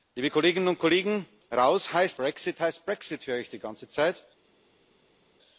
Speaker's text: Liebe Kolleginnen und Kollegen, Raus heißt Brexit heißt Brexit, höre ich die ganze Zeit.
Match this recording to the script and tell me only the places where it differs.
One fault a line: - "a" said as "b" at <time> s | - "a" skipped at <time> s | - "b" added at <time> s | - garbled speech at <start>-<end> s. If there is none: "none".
none